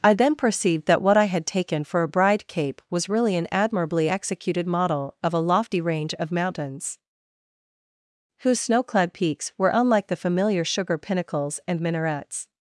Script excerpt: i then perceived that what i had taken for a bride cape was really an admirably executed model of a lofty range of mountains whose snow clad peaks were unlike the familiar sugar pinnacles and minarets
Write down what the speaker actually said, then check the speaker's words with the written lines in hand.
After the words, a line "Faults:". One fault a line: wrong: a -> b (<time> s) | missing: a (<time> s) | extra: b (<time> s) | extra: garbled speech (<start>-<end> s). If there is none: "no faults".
i then perceived that what i had taken for a bride cape was really an admirably executed model of a lofty range of mountains whose snow clad peaks were unlike the familiar sugar pinnacles and minarets
Faults:
no faults